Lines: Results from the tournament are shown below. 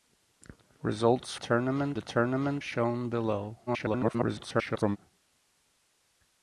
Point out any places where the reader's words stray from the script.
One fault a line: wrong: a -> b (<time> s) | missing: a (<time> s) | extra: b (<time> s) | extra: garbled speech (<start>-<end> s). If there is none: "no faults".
wrong: from -> tournament (1.3 s)
missing: are (2.6 s)
extra: garbled speech (3.7-5.0 s)